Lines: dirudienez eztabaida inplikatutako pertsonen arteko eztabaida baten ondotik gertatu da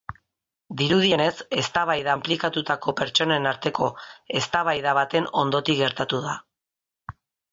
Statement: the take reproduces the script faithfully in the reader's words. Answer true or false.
true